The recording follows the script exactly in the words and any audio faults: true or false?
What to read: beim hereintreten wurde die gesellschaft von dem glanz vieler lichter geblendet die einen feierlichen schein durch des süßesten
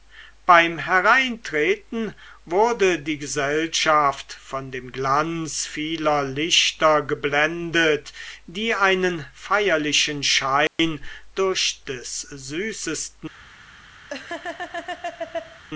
false